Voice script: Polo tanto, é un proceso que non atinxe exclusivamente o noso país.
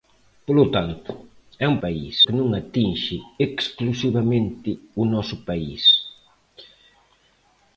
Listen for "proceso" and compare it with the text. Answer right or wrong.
wrong